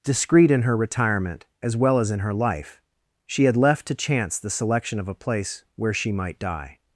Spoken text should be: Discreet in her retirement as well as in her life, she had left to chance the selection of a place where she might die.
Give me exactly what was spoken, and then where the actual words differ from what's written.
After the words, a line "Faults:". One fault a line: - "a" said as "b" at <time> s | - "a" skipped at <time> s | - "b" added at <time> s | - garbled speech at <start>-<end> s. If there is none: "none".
Discreet in her retirement as well as in her life, she had left to chance the selection of a place where she might die.
Faults:
none